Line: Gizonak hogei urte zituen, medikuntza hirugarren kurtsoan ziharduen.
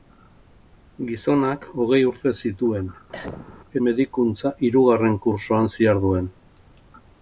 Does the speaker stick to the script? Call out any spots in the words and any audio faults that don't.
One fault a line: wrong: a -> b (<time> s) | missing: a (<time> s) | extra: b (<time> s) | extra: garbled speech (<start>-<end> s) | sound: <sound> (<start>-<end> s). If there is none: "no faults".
sound: cough (3.1-3.6 s)